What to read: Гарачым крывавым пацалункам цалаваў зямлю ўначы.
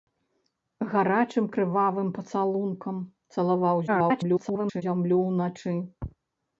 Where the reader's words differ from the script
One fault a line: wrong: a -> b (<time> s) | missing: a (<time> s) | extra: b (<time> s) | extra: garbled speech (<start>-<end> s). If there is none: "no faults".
extra: garbled speech (3.9-4.8 s)